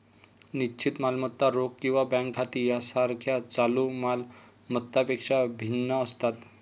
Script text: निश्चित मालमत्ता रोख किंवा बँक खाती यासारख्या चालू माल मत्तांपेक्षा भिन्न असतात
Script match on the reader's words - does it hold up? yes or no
yes